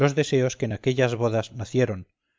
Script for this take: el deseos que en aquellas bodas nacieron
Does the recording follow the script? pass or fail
fail